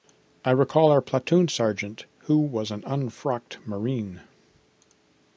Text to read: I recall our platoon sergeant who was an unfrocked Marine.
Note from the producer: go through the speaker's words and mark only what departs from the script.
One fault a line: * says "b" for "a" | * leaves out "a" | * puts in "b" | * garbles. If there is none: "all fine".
all fine